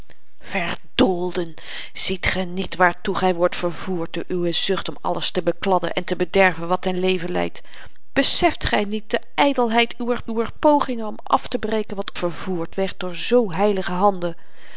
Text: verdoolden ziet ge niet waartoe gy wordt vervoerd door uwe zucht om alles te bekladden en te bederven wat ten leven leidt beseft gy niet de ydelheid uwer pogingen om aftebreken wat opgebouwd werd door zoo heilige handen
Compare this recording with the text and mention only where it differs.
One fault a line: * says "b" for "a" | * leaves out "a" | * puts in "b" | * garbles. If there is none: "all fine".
* puts in "uwer"
* says "vervoerd" for "opgebouwd"